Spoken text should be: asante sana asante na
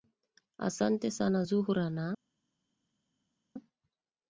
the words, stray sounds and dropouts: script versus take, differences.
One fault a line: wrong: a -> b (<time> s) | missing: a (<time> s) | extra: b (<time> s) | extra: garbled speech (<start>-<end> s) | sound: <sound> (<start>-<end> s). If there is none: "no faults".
wrong: asante -> zuhra (1.4 s)